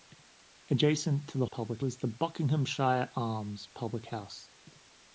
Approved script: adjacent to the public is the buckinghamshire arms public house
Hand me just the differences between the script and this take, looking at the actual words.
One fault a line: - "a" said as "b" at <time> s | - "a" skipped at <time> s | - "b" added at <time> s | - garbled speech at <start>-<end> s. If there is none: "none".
none